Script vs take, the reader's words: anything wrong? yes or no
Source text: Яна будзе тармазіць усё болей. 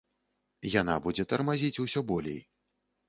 no